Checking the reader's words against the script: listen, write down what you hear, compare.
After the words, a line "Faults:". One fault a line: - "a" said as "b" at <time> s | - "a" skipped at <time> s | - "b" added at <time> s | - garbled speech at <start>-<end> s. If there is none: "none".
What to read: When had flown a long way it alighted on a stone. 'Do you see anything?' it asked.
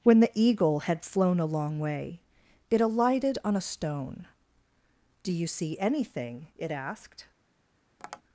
When the Eagle had flown a long way it alighted on a stone. 'Do you see anything?' it asked.
Faults:
- "the Eagle" added at 0.2 s